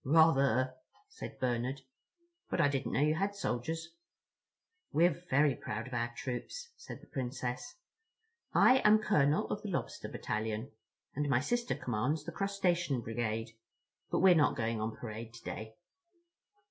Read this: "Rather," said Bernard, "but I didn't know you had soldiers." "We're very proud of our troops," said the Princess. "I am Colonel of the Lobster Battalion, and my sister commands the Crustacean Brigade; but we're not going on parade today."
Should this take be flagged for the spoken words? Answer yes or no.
no